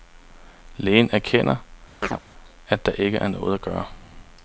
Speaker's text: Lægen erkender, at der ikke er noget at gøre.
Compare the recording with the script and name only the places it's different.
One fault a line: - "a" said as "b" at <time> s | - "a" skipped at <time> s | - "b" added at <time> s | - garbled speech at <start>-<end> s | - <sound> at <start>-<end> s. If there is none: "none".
- chirp at 2.0-2.2 s